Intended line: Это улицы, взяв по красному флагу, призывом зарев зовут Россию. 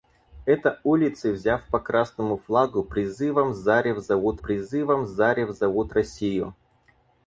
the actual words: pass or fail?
fail